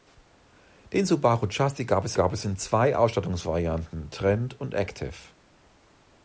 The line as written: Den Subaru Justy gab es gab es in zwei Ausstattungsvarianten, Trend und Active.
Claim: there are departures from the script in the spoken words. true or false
false